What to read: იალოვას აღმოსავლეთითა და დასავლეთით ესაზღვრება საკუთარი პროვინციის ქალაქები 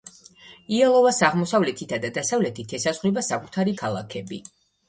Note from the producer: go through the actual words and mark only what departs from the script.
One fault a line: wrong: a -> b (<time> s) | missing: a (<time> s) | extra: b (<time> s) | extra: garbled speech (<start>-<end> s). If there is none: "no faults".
missing: პროვინციის (3.8 s)